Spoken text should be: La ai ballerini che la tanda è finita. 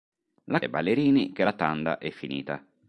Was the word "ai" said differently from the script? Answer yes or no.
no